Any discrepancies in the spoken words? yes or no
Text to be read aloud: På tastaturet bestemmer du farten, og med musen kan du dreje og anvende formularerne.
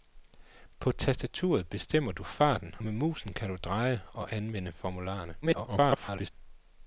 yes